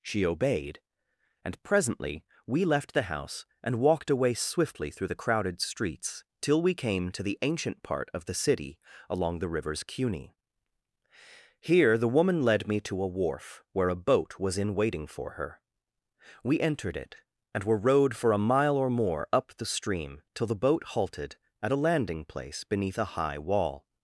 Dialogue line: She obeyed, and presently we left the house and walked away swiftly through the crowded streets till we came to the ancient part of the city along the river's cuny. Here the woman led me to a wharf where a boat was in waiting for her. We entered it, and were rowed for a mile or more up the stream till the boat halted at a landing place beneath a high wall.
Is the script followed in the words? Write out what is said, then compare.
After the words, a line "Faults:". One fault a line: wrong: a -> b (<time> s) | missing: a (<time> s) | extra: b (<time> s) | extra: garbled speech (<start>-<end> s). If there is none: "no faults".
She obeyed, and presently we left the house and walked away swiftly through the crowded streets till we came to the ancient part of the city along the river's cuny. Here the woman led me to a wharf where a boat was in waiting for her. We entered it, and were rowed for a mile or more up the stream till the boat halted at a landing place beneath a high wall.
Faults:
no faults